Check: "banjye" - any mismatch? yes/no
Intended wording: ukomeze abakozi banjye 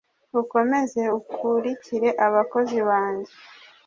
no